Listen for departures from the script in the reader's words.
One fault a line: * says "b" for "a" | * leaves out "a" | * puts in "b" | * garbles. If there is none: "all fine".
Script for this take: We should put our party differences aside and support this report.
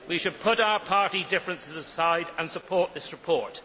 all fine